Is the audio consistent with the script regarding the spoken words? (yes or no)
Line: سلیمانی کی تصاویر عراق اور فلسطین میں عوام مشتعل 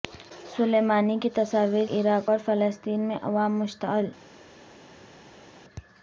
yes